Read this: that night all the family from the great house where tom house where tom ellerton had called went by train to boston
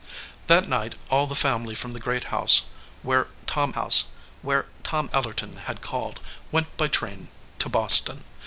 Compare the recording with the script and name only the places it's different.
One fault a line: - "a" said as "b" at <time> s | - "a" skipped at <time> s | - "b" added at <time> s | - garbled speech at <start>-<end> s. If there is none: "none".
none